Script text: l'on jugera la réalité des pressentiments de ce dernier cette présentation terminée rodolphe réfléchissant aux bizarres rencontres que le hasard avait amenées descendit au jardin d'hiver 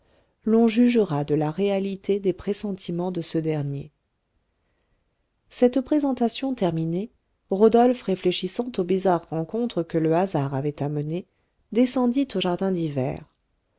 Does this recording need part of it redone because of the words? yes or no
yes